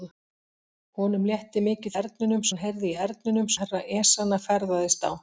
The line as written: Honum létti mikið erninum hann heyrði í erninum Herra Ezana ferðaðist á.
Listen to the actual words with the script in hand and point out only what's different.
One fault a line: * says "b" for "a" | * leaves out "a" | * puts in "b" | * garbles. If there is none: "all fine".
all fine